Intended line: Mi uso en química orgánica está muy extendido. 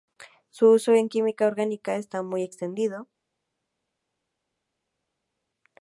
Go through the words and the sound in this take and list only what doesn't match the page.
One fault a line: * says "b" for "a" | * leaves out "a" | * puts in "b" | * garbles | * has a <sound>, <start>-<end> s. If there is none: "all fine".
* says "Su" for "Mi"